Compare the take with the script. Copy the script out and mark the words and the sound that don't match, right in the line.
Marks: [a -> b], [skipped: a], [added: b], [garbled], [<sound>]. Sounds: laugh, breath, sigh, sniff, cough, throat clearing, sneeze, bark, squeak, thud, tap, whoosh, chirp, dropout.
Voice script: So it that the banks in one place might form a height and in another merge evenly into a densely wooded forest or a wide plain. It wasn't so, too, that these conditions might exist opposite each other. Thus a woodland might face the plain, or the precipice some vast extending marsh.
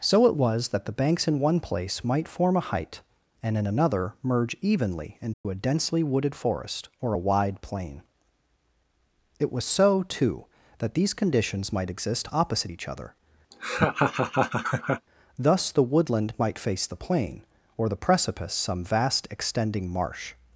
So it [added: was] that the banks in one place might form a height and in another merge evenly into [dropout] a densely wooded forest or a wide plain. It [wasn't -> was] so, too, that these conditions might exist opposite each other. [laugh] Thus [a -> the] woodland might face the plain, or the precipice some vast extending marsh.